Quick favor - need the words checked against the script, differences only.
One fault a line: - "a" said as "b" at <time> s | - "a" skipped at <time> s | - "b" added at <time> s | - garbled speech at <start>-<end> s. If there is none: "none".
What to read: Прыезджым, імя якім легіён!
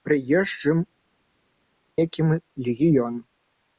- "імя" skipped at 0.8 s